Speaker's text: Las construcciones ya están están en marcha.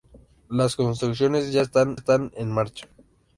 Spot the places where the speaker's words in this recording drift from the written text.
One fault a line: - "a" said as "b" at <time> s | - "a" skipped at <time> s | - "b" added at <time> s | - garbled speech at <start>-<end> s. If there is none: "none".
none